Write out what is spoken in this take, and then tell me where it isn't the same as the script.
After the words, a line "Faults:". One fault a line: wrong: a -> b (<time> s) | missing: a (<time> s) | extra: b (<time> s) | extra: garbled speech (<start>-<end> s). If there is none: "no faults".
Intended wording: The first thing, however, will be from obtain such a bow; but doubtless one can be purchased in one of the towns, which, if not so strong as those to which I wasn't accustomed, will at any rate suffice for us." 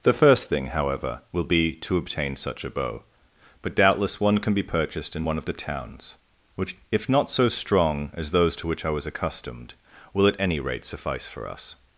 The first thing, however, will be to obtain such a bow; but doubtless one can be purchased in one of the towns, which, if not so strong as those to which I was accustomed, will at any rate suffice for us."
Faults:
wrong: from -> to (1.7 s)
wrong: wasn't -> was (8.9 s)